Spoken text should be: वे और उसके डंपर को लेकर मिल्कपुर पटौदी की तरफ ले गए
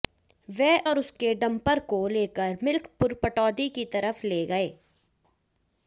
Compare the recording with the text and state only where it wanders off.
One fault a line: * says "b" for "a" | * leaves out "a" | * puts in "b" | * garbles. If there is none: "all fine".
all fine